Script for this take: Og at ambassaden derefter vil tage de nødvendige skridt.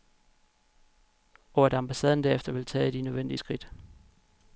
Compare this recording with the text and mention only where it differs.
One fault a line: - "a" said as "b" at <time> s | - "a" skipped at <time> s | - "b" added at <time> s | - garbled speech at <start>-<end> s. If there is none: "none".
none